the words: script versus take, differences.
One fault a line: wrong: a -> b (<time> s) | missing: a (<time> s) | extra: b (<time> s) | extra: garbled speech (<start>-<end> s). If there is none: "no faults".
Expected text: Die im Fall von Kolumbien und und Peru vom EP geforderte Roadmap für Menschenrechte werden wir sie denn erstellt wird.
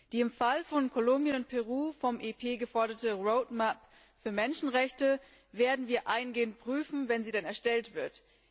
missing: und (1.5 s)
extra: eingehend prüfen wenn (6.1 s)